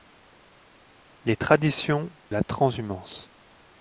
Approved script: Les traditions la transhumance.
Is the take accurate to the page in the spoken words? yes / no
yes